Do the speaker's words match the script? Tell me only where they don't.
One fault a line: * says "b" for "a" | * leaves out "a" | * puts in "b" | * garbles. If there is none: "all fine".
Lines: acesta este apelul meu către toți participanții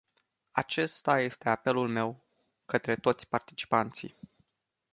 all fine